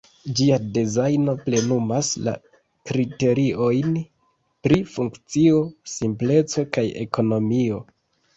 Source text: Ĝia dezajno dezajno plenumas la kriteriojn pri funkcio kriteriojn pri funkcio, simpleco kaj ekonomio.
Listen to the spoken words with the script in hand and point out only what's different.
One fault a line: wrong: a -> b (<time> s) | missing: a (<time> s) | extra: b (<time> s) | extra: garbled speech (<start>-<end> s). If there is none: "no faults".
missing: dezajno (1.3 s)
missing: kriteriojn pri funkcio (5.6 s)